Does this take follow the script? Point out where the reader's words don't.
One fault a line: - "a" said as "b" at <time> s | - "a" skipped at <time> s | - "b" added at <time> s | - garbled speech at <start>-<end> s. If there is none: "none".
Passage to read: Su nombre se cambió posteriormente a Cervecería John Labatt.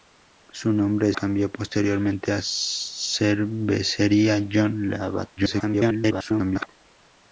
- "se" skipped at 1.1 s
- garbled speech at 5.4-6.7 s